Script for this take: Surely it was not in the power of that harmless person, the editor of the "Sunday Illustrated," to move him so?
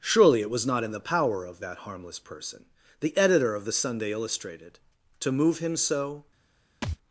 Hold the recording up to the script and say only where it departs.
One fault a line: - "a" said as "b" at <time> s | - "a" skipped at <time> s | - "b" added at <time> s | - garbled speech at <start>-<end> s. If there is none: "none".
none